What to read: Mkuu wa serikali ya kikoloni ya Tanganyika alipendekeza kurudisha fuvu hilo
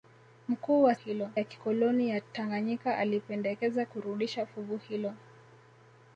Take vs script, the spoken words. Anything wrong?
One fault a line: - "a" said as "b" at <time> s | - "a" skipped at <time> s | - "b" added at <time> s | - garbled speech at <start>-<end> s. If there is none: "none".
- "serikali" said as "hilo" at 0.9 s